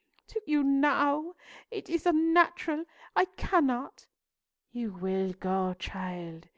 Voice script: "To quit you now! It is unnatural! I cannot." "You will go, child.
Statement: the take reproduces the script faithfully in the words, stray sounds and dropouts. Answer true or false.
false